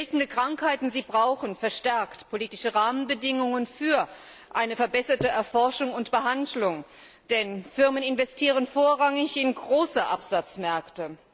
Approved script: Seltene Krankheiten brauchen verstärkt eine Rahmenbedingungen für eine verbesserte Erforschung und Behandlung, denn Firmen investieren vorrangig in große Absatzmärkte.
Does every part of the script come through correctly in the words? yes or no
no